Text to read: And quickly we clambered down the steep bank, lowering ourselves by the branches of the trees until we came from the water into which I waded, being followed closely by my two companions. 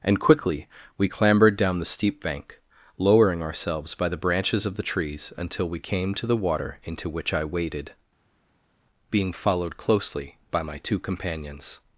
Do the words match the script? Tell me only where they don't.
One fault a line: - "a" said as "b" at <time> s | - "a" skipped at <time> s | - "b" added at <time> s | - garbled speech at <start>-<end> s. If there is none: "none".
- "from" said as "to" at 6.1 s